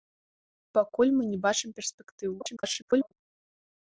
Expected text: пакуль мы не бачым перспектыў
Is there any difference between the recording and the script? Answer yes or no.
yes